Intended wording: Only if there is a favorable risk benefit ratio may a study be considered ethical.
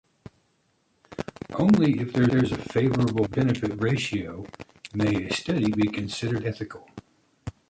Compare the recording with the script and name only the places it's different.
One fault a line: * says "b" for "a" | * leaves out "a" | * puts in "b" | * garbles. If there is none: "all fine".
* puts in "there"
* leaves out "risk"